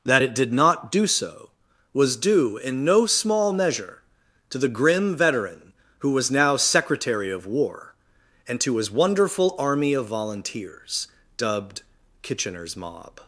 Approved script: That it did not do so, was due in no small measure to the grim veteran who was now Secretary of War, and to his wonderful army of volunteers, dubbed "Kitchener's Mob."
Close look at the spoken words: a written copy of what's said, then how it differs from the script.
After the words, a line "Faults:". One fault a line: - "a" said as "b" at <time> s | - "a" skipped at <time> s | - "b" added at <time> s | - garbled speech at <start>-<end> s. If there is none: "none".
That it did not do so, was due in no small measure to the grim veteran who was now Secretary of War, and to his wonderful army of volunteers, dubbed "Kitchener's Mob."
Faults:
none